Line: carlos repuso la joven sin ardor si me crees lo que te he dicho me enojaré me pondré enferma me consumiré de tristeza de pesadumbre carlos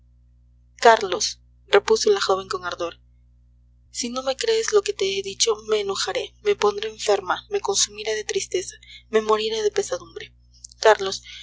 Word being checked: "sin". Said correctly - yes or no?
no